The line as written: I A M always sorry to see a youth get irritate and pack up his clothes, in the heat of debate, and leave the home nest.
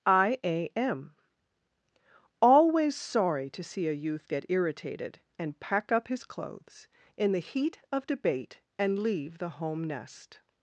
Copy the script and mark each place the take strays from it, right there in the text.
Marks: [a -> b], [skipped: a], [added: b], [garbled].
I A M always sorry to see a youth get [irritate -> irritated] and pack up his clothes, in the heat of debate, and leave the home nest.